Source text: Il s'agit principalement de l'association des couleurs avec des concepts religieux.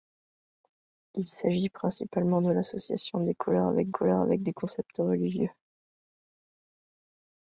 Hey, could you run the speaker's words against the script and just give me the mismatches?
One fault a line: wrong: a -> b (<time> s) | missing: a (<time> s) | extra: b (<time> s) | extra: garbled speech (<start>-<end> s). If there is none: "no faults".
extra: couleurs avec (3.9 s)